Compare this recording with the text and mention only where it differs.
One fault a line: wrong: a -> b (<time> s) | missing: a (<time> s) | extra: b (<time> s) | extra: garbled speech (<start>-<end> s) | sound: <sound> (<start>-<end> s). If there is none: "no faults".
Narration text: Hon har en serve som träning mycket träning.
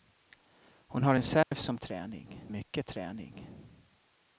sound: dropout (1.4-1.5 s)